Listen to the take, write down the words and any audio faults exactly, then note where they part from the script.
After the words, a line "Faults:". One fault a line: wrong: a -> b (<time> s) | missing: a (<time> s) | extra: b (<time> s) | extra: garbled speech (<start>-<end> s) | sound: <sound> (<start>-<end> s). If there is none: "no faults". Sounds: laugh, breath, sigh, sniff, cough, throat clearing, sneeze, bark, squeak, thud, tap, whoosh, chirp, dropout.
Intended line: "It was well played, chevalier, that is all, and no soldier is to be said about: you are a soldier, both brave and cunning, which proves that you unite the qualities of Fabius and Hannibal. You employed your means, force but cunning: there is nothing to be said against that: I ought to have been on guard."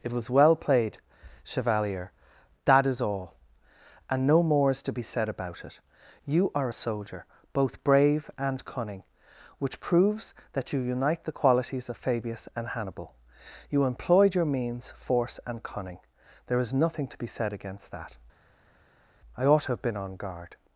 "It was well played, chevalier, that is all, and no more is to be said about it: you are a soldier, both brave and cunning, which proves that you unite the qualities of Fabius and Hannibal. You employed your means, force and cunning: there is nothing to be said against that: I ought to have been on guard."
Faults:
wrong: soldier -> more (4.4 s)
extra: it (5.6 s)
wrong: but -> and (15.5 s)